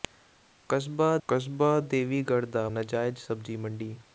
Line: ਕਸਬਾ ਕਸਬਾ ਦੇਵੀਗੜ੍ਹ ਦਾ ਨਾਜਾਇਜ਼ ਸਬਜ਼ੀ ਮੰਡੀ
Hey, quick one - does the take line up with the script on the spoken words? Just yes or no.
yes